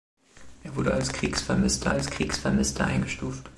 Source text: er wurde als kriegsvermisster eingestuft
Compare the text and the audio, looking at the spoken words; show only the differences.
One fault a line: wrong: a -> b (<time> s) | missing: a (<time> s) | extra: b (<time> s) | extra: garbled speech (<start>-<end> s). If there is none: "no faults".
extra: als kriegsvermisster (1.9 s)